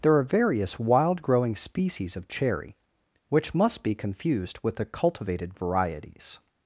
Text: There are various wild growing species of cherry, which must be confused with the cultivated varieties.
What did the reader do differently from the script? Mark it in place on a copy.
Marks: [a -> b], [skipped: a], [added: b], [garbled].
There are various wild growing species of cherry, which must be confused with the cultivated varieties.